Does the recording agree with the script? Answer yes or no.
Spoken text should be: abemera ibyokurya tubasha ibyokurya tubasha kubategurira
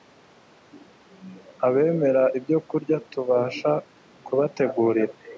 no